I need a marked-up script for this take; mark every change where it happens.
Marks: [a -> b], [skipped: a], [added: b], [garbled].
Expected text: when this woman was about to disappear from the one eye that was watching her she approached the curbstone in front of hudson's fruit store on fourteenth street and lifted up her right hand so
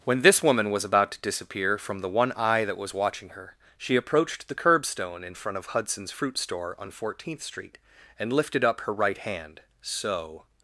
when this woman was about to disappear from the one eye that was watching her she approached the curbstone in front of hudson's fruit store on fourteenth street and lifted up her right hand so